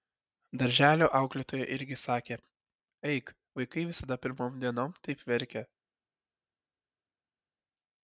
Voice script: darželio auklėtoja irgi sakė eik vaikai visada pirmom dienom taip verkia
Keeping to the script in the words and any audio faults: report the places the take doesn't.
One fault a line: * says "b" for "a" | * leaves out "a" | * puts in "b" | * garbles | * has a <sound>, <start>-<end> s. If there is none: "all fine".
all fine